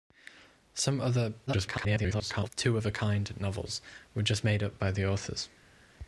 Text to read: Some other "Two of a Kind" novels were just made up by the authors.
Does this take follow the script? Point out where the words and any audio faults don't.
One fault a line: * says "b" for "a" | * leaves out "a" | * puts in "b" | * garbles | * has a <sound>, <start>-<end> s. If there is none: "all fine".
* garbles